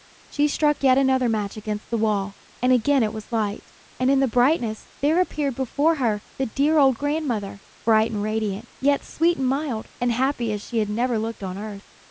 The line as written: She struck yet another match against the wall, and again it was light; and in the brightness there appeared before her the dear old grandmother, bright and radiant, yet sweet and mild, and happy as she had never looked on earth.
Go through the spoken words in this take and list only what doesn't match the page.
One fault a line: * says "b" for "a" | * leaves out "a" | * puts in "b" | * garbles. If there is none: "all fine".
all fine